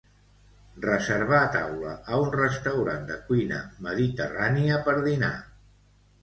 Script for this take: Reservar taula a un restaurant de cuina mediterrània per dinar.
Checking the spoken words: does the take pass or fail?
pass